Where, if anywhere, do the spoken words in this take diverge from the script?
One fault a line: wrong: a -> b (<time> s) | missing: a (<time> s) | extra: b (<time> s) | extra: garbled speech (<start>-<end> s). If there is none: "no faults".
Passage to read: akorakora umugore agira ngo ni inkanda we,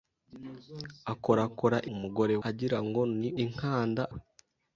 no faults